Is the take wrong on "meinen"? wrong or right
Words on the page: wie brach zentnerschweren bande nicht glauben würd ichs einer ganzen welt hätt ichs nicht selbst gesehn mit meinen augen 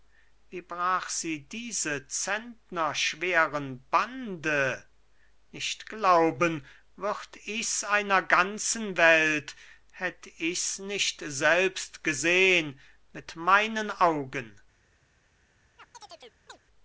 right